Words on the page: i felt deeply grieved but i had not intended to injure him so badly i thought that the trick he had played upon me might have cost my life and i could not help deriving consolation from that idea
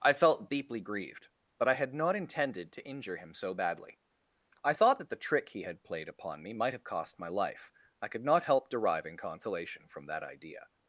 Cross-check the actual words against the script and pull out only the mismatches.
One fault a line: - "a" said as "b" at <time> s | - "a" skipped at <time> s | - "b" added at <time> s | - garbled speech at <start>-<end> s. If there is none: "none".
- "and" skipped at 7.7 s